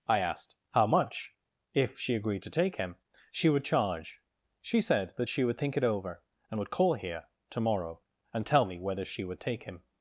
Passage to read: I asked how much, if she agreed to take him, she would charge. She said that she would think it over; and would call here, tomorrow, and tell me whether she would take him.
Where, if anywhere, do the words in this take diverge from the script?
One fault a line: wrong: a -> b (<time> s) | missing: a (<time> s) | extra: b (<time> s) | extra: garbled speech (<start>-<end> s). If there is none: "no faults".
no faults